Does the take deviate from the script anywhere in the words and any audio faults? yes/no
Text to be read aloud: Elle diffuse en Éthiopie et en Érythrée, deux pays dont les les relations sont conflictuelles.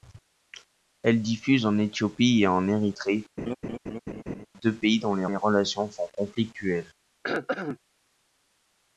yes